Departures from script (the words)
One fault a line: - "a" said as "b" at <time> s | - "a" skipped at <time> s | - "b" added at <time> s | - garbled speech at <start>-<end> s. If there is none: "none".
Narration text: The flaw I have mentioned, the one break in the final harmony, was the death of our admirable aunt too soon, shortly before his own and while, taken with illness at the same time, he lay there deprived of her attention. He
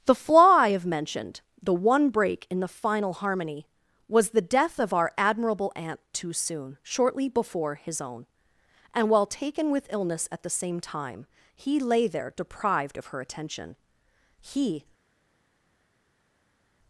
none